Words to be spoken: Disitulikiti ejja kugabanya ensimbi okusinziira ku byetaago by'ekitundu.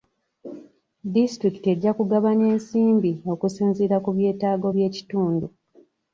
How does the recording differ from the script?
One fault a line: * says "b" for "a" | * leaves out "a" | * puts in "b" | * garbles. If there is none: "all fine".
all fine